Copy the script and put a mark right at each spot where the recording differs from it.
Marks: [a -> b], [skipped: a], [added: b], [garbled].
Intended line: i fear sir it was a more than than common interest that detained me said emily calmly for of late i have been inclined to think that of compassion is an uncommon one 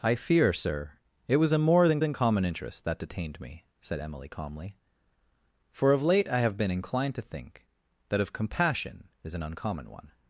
i fear sir it was a more than than common interest that detained me said emily calmly for of late i have been inclined to think that of compassion is an uncommon one